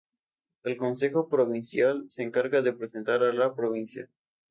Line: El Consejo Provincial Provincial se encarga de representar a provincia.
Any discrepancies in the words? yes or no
yes